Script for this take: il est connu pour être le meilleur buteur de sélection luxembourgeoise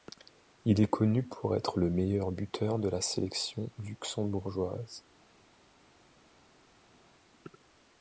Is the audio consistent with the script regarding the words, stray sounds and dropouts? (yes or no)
no